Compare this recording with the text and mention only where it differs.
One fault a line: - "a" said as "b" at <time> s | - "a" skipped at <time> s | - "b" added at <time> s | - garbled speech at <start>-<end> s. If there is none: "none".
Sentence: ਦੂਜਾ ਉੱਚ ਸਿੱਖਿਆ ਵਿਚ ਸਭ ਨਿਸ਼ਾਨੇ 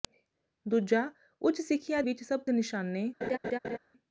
none